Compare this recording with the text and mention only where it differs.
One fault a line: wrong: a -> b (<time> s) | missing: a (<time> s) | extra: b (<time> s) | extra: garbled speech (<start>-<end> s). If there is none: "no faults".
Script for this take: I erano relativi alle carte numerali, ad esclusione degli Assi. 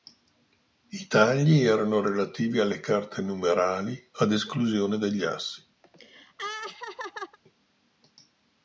extra: tagli (1.1 s)